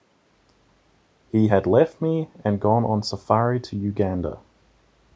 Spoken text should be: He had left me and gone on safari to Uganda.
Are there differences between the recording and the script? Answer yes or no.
no